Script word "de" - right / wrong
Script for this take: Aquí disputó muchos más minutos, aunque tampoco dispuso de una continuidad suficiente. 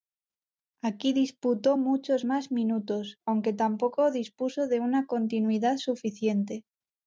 right